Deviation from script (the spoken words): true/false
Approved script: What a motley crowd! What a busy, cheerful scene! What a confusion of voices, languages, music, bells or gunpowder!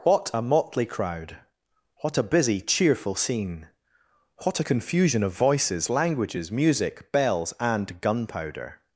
true